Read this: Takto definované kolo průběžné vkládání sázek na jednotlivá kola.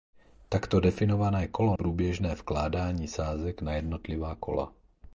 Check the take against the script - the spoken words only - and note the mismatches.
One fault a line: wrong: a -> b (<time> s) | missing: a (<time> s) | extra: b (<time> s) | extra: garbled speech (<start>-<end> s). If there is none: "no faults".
no faults